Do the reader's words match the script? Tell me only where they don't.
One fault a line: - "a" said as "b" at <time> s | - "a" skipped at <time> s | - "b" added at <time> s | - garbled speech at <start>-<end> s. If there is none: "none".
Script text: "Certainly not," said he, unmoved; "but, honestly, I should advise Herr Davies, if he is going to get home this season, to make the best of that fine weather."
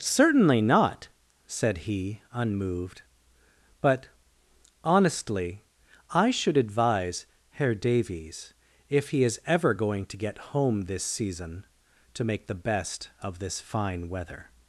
- "ever" added at 9.4 s
- "that" said as "this" at 13.4 s